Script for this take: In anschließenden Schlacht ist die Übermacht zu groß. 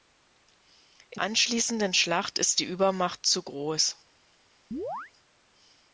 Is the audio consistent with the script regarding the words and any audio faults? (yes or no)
no